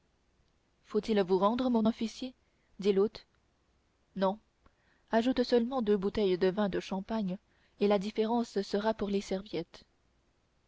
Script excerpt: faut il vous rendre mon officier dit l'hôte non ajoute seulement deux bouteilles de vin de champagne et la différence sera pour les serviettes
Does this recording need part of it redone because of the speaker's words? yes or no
no